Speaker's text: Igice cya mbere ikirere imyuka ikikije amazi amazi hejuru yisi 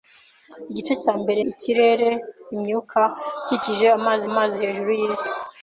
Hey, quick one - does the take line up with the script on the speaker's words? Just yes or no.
yes